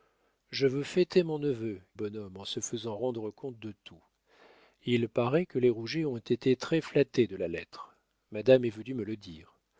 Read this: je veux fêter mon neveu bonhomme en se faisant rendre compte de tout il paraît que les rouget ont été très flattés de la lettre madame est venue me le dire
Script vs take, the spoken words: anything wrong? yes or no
no